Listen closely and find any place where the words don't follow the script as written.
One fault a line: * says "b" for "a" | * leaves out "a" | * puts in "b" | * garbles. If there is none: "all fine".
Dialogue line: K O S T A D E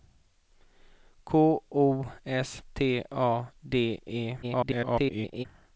* garbles